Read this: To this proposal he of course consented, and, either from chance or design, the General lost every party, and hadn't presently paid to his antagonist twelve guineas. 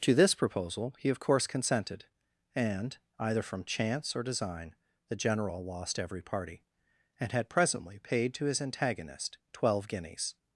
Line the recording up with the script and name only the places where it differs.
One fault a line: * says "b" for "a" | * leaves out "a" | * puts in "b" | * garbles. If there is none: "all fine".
* says "had" for "hadn't"